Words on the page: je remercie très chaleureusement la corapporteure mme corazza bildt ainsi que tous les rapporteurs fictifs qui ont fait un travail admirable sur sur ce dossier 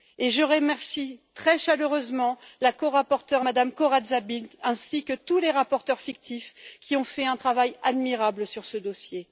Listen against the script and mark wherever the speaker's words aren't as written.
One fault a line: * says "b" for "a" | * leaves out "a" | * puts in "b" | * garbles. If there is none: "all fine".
* leaves out "sur"